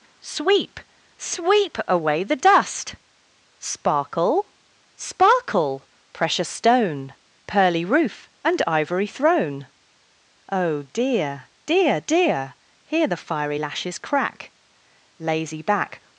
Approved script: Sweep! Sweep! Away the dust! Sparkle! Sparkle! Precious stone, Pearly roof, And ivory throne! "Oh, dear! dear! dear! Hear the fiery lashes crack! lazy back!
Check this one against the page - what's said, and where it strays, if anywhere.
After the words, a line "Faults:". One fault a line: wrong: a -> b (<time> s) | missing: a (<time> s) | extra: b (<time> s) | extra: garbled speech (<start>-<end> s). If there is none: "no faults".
Sweep! Sweep! Away the dust! Sparkle! Sparkle! Precious stone, Pearly roof, And ivory throne! "Oh, dear! dear! dear! Hear the fiery lashes crack! lazy back!
Faults:
no faults